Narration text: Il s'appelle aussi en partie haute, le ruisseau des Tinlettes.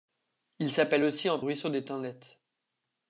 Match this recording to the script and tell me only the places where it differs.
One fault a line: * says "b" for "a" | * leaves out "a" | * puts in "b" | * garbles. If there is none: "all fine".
* leaves out "partie haute le"